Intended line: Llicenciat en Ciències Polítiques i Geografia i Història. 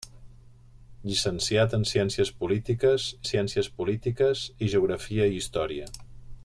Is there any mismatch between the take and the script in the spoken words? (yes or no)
yes